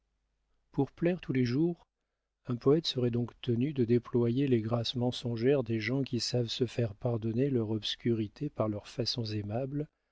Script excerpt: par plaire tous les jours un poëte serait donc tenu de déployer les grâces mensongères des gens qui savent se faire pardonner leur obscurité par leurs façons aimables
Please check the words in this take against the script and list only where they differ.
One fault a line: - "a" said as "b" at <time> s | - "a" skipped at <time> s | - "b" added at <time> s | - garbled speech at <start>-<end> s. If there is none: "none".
- "par" said as "pour" at 0.7 s